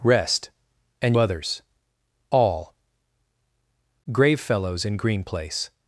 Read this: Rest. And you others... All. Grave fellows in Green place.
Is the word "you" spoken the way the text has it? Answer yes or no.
no